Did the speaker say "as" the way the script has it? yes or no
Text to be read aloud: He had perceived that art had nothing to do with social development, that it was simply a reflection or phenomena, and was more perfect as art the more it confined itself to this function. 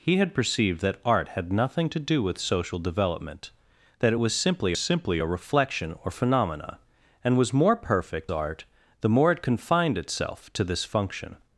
no